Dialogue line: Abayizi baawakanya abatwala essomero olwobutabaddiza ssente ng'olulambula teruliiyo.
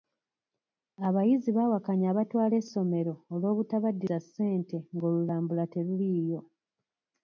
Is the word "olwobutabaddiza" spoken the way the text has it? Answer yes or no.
yes